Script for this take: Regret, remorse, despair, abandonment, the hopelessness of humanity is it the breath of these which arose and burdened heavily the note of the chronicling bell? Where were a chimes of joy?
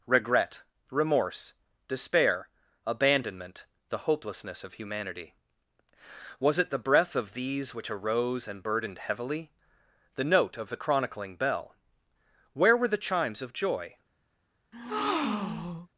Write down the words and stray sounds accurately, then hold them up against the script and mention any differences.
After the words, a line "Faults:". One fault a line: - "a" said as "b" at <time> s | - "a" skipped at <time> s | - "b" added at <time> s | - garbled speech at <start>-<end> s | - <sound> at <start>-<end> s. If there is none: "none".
Regret, remorse, despair, abandonment, the hopelessness of humanity was it the breath of these which arose and burdened heavily the note of the chronicling bell? Where were the chimes of joy?
Faults:
- "is" said as "was" at 6.4 s
- "a" said as "the" at 12.9 s
- breath at 14.7-15.9 s